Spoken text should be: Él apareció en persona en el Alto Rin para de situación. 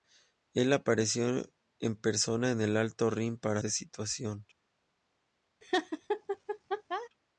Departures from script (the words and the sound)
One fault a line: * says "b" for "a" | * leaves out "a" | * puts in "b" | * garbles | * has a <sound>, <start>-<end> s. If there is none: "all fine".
* has a laugh, 5.6-7.1 s